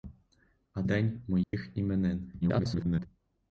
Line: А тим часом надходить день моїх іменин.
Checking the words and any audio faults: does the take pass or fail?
fail